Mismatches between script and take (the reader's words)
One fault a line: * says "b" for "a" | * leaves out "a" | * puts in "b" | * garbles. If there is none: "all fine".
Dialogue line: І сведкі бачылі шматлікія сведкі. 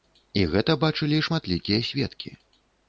* says "гэта" for "сведкі"